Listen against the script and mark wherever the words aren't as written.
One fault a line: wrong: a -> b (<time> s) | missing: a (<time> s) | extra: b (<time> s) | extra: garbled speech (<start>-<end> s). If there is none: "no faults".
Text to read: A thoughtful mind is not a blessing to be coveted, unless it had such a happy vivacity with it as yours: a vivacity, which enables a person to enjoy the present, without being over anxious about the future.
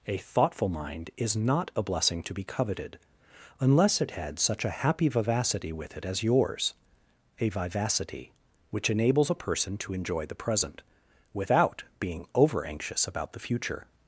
no faults